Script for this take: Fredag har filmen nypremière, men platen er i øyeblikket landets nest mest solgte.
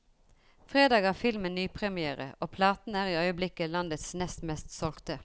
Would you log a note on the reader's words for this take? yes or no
yes